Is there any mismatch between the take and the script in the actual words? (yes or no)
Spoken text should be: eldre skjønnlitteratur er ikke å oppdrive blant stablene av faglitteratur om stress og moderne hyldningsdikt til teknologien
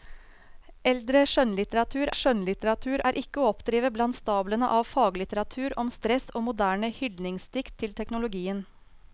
yes